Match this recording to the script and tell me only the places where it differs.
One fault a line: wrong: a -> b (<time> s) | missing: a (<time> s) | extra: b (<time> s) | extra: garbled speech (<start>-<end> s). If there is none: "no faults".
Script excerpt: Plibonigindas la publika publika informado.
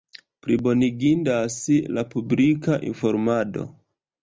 missing: publika (2.8 s)